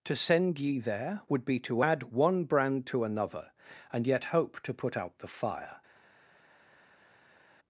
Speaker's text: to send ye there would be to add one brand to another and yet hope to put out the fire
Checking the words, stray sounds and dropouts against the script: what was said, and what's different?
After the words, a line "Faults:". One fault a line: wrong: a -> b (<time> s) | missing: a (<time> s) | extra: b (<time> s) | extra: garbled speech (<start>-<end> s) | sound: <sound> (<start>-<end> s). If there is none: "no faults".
to send ye there would be to add one brand to another and yet hope to put out the fire
Faults:
no faults